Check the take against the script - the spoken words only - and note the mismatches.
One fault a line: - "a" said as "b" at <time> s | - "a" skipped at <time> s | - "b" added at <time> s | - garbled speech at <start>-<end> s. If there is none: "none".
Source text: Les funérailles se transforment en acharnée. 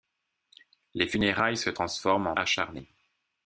none